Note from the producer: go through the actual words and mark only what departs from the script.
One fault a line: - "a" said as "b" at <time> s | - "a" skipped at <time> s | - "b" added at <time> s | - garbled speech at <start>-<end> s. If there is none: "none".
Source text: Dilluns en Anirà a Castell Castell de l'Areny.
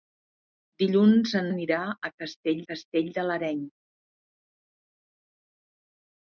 none